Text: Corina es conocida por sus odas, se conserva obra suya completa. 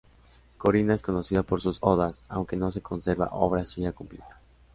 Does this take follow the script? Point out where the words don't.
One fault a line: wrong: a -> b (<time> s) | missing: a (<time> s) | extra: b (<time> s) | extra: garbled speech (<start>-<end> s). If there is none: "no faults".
extra: aunque no (2.3 s)